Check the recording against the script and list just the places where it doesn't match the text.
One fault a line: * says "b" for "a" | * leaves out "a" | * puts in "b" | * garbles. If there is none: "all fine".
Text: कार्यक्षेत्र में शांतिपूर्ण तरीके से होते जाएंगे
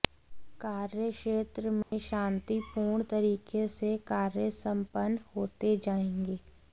* puts in "कार्य संपन्न"